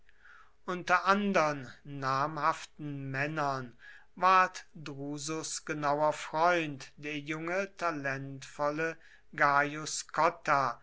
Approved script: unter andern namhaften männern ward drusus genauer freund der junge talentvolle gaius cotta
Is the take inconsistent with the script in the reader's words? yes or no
no